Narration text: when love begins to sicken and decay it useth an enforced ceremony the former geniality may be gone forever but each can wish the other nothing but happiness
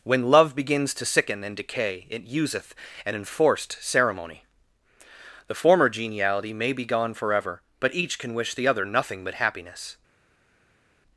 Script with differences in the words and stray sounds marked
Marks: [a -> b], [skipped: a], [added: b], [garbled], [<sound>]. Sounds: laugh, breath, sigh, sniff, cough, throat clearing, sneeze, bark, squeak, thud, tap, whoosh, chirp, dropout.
when love begins to sicken and decay it useth an enforced ceremony the former geniality may be gone forever but each can wish the other nothing but happiness